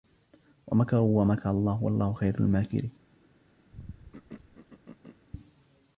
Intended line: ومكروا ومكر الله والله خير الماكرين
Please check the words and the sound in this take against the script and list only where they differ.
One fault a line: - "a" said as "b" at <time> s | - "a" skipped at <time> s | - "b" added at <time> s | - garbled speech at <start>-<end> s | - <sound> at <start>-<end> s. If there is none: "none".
- throat clearing at 3.7-5.3 s